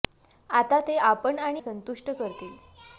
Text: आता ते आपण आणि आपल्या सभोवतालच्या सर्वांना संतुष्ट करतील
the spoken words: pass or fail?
fail